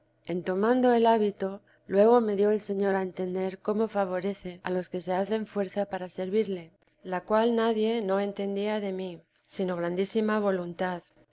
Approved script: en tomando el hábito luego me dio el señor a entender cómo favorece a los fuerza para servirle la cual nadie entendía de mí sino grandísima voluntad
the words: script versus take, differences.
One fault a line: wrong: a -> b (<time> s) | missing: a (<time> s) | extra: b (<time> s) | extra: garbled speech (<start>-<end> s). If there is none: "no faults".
extra: que se hacen (4.9 s)
extra: no (8.0 s)